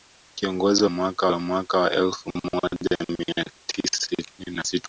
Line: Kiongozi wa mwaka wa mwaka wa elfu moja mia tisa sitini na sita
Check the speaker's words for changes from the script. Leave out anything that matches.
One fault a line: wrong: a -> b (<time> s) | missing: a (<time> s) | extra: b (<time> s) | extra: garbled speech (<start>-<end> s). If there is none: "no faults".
no faults